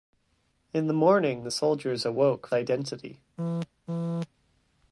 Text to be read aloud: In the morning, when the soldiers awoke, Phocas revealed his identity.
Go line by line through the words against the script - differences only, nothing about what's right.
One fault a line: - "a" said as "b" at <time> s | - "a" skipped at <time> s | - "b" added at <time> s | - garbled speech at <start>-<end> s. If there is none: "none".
- "when" skipped at 1.4 s
- "Phocas revealed his" skipped at 2.5 s